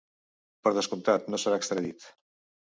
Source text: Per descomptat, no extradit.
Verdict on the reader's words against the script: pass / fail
fail